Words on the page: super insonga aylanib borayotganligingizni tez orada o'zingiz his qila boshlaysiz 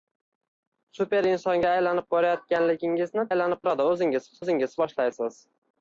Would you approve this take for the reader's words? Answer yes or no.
no